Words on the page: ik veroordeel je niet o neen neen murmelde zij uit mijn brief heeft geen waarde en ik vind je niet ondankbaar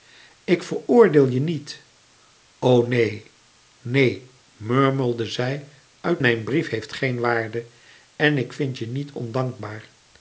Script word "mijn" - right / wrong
right